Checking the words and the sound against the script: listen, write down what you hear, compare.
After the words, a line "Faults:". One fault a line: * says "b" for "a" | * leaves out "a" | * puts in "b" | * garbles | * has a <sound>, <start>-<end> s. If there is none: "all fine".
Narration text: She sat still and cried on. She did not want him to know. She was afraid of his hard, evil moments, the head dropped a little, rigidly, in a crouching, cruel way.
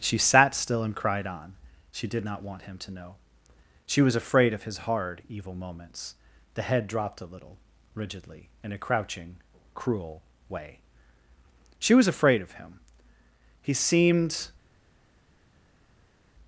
She sat still and cried on. She did not want him to know. She was afraid of his hard, evil moments, the head dropped a little, rigidly, in a crouching, cruel way. She was afraid of him. He seemed
Faults:
* puts in "She was afraid of him He seemed"